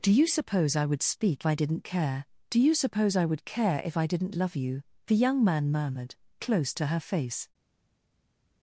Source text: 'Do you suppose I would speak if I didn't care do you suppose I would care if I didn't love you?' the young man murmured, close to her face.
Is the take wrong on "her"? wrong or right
right